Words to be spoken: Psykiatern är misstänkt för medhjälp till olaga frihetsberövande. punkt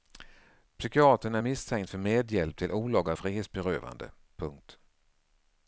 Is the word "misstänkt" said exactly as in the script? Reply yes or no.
yes